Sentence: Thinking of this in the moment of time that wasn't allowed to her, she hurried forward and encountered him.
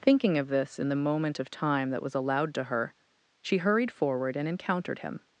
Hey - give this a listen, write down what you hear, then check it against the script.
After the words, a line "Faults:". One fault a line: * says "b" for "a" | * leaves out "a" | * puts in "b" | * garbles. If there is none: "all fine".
Thinking of this in the moment of time that was allowed to her, she hurried forward and encountered him.
Faults:
* says "was" for "wasn't"